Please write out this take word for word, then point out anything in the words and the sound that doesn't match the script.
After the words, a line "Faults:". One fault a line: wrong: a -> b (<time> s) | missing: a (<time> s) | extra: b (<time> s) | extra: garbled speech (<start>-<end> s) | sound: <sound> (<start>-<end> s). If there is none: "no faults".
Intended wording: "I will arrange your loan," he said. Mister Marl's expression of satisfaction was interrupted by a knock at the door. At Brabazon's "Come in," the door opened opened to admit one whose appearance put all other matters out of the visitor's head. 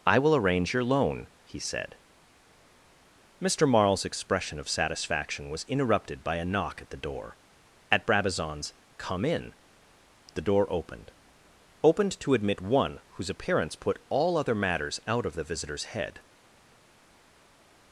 "I will arrange your loan," he said. Mister Marl's expression of satisfaction was interrupted by a knock at the door. At Brabazon's "Come in," the door opened opened to admit one whose appearance put all other matters out of the visitor's head.
Faults:
no faults